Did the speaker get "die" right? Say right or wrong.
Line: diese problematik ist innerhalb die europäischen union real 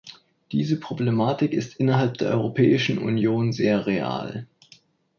wrong